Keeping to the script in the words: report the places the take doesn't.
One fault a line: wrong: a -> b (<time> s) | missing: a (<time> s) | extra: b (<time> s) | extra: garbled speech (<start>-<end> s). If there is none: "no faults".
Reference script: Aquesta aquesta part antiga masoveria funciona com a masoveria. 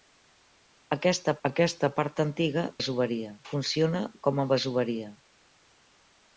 no faults